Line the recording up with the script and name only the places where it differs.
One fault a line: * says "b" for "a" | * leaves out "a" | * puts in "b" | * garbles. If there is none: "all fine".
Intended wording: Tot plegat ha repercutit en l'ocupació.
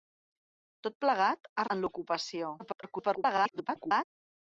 * leaves out "repercutit"
* garbles